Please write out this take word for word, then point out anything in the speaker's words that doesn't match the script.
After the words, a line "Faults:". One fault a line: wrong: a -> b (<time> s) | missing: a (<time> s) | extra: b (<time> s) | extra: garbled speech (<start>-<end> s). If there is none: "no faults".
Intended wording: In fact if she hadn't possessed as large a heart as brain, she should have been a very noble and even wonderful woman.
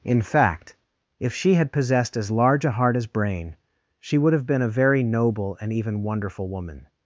In fact if she had possessed as large a heart as brain, she would have been a very noble and even wonderful woman.
Faults:
wrong: hadn't -> had (1.5 s)
wrong: should -> would (4.2 s)